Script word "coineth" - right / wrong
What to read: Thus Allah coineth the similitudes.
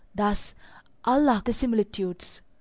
wrong